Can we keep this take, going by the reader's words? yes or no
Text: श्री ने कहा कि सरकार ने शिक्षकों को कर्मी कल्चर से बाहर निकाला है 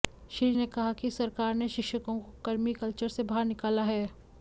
yes